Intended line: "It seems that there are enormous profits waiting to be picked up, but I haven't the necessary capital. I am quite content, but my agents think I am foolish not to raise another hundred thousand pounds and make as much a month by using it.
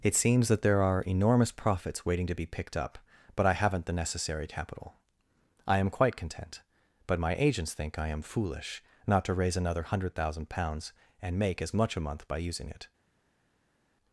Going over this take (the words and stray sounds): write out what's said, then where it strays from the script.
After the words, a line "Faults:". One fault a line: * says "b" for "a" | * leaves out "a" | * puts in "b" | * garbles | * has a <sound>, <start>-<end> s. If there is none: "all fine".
"It seems that there are enormous profits waiting to be picked up, but I haven't the necessary capital. I am quite content, but my agents think I am foolish not to raise another hundred thousand pounds and make as much a month by using it.
Faults:
all fine